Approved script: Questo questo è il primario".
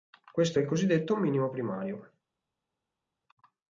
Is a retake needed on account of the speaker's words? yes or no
yes